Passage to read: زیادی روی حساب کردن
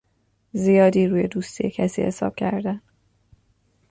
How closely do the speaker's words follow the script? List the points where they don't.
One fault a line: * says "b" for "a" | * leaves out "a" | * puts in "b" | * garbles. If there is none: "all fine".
* puts in "دوستی کسی"